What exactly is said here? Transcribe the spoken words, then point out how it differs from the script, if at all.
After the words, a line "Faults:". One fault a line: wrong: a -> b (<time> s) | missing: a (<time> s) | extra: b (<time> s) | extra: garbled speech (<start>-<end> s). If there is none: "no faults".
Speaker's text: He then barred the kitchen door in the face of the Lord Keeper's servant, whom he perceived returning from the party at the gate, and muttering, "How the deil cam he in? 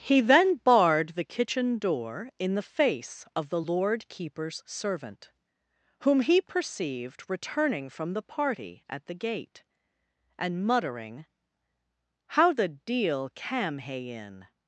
He then barred the kitchen door in the face of the Lord Keeper's servant, whom he perceived returning from the party at the gate, and muttering, "How the deil cam he in?
Faults:
no faults